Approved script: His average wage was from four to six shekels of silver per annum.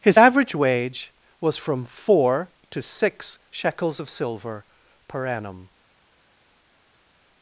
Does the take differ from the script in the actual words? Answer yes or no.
no